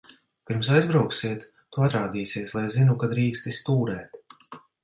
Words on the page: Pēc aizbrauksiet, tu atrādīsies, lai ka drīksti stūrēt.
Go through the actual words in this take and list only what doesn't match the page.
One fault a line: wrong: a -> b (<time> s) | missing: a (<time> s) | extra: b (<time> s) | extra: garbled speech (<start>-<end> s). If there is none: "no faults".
wrong: Pēc -> Pirms (0.5 s)
extra: zinu (2.8 s)